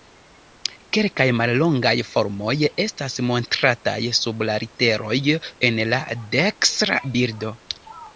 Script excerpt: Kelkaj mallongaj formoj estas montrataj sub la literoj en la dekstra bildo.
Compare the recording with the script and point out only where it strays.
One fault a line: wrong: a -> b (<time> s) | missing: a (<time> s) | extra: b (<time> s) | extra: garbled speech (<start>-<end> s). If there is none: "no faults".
no faults